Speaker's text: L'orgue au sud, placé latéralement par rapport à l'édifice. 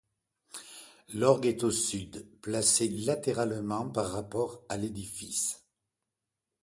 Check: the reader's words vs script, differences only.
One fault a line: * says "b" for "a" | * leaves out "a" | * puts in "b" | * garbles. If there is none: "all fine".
* puts in "est"